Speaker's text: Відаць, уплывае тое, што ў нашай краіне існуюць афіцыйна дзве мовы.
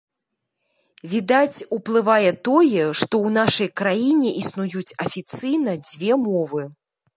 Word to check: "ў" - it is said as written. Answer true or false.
true